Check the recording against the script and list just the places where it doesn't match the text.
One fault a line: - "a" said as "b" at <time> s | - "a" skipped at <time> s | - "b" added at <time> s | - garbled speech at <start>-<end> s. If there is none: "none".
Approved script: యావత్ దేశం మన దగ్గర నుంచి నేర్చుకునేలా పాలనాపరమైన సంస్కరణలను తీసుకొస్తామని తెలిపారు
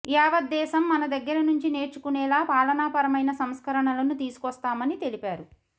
none